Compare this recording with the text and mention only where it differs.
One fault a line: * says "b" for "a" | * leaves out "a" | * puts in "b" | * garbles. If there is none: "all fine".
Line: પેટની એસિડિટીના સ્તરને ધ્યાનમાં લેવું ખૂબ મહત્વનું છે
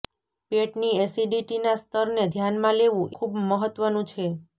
all fine